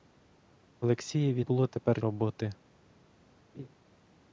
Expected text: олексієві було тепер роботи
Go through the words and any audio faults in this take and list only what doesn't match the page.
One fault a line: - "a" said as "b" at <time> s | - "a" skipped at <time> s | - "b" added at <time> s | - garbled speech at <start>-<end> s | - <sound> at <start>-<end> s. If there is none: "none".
- laugh at 3.5-3.7 s